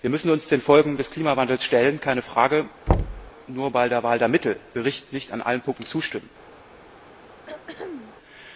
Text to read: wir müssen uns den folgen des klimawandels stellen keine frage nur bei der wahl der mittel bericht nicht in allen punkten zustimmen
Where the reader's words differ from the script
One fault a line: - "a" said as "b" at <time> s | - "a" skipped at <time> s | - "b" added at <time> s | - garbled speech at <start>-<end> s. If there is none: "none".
none